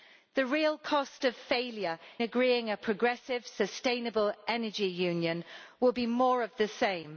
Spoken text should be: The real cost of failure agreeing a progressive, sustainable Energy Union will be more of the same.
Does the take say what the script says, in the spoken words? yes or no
yes